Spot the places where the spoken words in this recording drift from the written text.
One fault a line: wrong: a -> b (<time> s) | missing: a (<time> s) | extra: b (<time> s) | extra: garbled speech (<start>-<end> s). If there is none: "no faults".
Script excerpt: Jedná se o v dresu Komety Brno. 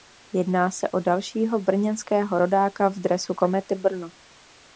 extra: dalšího brněnského rodáka (1.0 s)